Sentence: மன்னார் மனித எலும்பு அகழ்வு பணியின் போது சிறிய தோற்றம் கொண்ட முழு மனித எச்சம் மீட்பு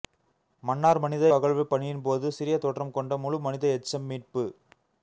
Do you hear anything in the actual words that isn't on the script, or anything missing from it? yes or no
yes